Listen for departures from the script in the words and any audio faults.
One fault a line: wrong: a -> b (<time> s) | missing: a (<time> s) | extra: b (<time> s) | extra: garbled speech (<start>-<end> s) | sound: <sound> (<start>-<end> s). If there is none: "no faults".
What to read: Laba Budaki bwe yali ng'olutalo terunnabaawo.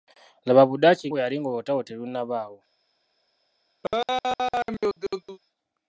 sound: laugh (3.8-5.4 s)